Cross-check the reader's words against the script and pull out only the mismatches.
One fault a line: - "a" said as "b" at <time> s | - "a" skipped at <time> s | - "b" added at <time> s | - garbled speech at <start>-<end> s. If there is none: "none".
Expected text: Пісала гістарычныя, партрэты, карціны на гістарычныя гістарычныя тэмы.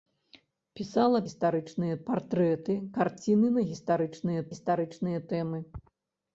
none